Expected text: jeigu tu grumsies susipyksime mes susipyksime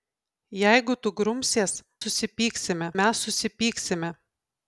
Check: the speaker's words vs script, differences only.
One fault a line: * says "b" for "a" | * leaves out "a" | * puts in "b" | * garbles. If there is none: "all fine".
all fine